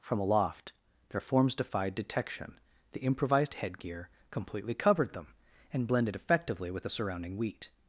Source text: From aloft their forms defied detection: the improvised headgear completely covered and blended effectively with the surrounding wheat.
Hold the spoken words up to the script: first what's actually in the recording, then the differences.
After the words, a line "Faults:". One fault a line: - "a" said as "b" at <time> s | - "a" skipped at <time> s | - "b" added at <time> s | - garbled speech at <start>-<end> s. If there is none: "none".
From aloft their forms defied detection: the improvised headgear completely covered them and blended effectively with the surrounding wheat.
Faults:
- "them" added at 5.1 s